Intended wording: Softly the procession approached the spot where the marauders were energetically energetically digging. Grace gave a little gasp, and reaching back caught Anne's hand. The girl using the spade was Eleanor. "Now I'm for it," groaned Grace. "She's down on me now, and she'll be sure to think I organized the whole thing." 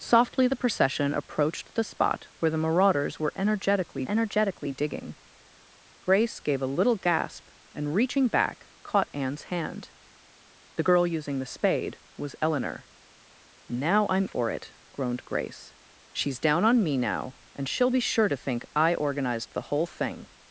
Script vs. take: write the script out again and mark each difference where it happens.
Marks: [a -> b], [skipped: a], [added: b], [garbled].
Softly the procession approached the spot where the marauders were energetically energetically digging. Grace gave a little gasp, and reaching back caught Anne's hand. The girl using the spade was Eleanor. "Now I'm for it," groaned Grace. "She's down on me now, and she'll be sure to think I organized the whole thing."